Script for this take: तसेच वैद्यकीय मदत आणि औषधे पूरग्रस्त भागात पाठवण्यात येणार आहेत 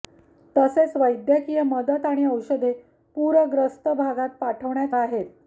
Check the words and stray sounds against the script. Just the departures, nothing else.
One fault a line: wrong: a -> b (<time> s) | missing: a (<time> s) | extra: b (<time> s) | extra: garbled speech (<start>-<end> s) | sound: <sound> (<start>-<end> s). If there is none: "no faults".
missing: येणार (5.0 s)